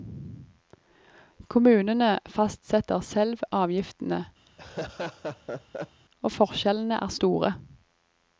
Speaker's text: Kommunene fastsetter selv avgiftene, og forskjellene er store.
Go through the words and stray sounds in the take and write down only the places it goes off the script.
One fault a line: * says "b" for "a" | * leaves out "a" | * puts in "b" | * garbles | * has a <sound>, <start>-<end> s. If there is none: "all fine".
* has a laugh, 4.5-6.0 s